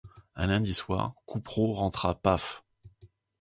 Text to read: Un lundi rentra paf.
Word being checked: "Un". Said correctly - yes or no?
yes